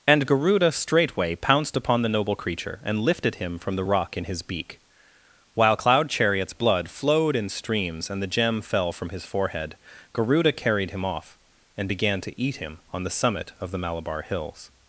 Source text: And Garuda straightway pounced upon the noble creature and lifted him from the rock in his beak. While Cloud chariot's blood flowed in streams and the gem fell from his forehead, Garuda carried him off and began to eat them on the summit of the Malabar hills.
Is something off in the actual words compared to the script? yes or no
yes